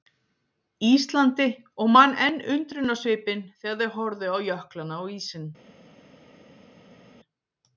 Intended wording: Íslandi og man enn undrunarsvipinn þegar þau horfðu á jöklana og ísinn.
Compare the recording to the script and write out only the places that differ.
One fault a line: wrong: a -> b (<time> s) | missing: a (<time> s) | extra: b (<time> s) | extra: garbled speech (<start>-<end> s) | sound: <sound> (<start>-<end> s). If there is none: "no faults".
no faults